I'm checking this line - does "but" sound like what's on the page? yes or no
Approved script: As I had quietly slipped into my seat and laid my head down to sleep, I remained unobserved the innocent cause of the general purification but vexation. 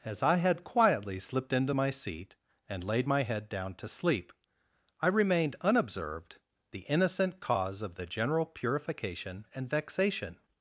no